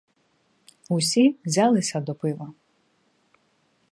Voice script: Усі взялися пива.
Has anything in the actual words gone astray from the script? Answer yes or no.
yes